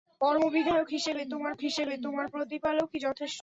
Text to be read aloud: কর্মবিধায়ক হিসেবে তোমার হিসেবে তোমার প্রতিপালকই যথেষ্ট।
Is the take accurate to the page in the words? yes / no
yes